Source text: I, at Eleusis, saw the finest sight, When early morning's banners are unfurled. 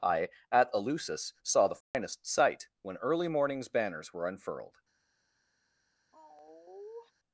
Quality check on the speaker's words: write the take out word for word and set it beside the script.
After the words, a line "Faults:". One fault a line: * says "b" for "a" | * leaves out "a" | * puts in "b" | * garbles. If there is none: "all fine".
I, at Eleusis, saw the finest sight, When early morning's banners were unfurled.
Faults:
* says "were" for "are"